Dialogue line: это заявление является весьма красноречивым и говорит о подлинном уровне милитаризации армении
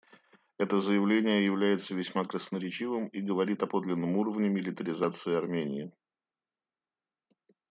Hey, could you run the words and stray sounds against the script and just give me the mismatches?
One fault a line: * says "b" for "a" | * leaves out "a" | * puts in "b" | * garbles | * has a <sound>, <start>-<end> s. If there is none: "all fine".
all fine